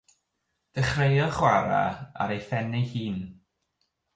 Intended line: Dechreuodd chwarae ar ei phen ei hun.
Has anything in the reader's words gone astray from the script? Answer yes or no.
no